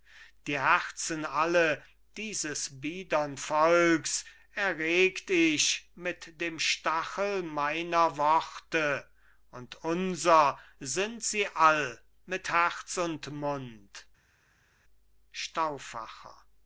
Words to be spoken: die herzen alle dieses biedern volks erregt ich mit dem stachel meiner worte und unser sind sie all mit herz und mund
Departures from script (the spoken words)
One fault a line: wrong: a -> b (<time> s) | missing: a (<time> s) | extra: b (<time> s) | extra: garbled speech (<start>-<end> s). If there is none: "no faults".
no faults